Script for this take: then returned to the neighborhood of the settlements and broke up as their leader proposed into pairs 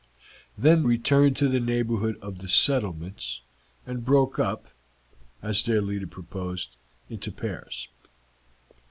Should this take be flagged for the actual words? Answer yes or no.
no